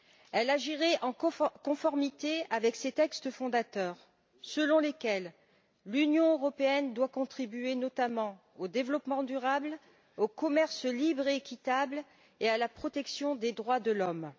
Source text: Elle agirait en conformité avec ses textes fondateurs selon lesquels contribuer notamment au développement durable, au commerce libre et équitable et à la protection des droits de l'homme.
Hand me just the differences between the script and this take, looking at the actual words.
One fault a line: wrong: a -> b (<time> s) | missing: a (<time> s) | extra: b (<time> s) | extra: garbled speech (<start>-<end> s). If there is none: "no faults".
extra: l'Union européenne doit (5.8 s)